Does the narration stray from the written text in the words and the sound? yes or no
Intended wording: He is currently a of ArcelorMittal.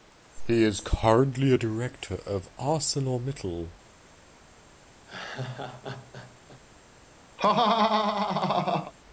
yes